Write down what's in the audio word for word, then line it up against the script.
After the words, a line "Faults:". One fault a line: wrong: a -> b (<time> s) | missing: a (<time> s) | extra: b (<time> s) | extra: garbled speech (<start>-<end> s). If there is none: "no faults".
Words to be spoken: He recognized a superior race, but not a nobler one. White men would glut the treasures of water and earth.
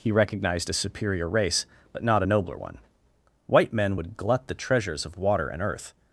He recognized a superior race, but not a nobler one. White men would glut the treasures of water and earth.
Faults:
no faults